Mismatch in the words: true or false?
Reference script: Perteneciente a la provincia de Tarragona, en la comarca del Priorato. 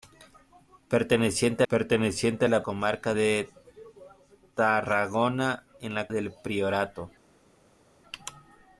true